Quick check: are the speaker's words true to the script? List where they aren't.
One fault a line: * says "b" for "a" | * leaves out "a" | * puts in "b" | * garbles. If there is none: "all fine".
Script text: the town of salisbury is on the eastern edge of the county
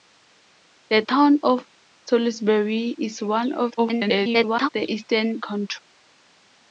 * garbles
* leaves out "edge of the"